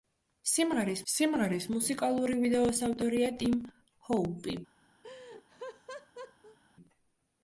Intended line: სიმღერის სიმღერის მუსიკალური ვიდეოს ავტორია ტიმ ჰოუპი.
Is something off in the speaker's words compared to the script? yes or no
no